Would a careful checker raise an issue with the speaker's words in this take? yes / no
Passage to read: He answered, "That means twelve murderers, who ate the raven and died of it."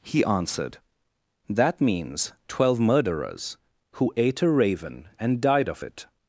yes